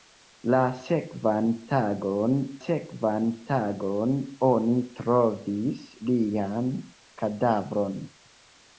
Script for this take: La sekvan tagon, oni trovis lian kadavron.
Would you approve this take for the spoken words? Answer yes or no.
no